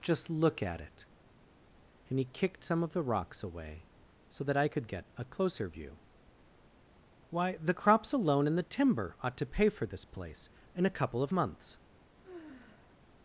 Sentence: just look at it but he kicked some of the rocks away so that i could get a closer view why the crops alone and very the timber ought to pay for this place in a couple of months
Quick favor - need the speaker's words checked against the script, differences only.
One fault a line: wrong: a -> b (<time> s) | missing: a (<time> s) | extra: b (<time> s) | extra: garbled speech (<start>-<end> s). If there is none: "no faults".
wrong: but -> and (2.1 s)
missing: very (8.6 s)